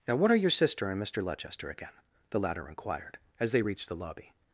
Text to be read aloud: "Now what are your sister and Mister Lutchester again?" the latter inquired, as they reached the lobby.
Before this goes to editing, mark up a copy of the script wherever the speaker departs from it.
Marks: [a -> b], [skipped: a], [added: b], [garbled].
"Now what are your sister and Mister Lutchester again?" the latter inquired, as they reached the lobby.